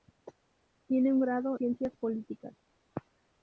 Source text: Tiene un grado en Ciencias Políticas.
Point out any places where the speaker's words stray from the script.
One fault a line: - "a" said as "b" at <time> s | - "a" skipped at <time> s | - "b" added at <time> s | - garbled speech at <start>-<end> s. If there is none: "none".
- "en" skipped at 1.6 s